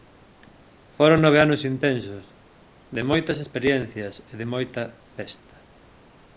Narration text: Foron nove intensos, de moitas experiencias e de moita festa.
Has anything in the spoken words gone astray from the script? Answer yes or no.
yes